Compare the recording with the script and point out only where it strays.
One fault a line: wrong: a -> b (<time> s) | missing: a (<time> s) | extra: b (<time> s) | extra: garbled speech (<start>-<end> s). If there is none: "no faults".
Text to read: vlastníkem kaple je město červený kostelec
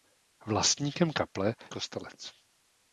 missing: je město červený (1.6 s)